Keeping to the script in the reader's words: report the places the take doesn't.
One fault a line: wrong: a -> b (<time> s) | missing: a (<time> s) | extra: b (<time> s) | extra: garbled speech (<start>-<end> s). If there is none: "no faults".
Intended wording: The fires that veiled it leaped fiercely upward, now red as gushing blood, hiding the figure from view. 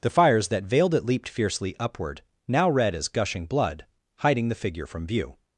no faults